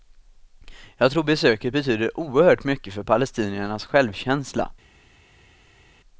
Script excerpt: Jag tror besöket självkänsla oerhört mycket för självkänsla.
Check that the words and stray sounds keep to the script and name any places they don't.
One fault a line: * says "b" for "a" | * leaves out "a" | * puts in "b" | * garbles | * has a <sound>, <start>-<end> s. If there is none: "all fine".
* says "betyder" for "självkänsla"
* puts in "palestiniernas"